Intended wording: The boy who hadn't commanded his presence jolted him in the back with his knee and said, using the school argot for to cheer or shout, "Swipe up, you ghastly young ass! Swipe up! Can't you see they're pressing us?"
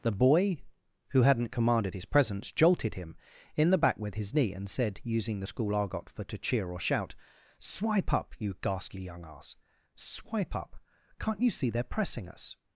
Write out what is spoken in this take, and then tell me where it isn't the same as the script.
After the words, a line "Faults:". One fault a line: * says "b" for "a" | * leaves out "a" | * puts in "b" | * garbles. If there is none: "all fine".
The boy who hadn't commanded his presence jolted him in the back with his knee and said, using the school argot for to cheer or shout, "Swipe up, you ghastly young ass! Swipe up! Can't you see they're pressing us?"
Faults:
all fine